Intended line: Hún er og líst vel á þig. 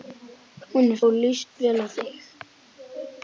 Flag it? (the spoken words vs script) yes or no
no